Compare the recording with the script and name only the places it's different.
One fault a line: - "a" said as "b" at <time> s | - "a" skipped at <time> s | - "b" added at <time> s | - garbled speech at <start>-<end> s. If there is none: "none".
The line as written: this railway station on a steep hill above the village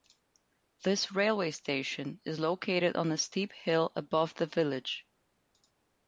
- "is located" added at 2.2 s